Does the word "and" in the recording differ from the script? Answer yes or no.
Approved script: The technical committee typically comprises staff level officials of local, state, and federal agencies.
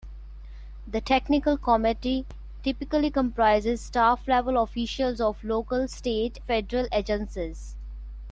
yes